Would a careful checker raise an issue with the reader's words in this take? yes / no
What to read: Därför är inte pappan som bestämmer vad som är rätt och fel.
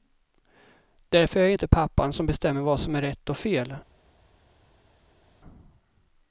yes